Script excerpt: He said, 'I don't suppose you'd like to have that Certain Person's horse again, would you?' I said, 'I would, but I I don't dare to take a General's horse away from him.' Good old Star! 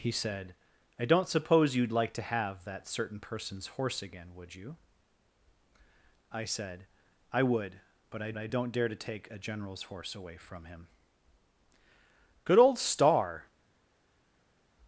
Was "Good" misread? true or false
false